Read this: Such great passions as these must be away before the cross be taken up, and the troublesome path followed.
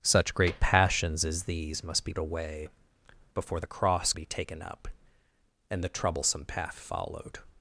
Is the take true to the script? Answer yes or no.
yes